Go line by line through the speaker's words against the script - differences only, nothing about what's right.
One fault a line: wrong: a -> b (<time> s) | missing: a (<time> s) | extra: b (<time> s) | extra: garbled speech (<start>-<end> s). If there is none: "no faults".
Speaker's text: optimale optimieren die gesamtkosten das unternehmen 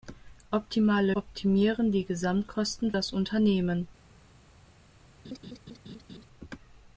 no faults